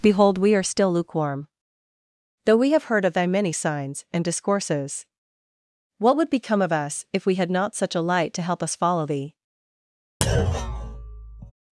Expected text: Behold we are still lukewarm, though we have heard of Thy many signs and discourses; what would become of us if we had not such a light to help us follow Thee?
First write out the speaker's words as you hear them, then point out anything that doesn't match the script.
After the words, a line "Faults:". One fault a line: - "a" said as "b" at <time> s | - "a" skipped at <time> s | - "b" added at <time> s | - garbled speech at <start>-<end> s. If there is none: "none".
Behold we are still lukewarm, though we have heard of Thy many signs and discourses; what would become of us if we had not such a light to help us follow Thee?
Faults:
none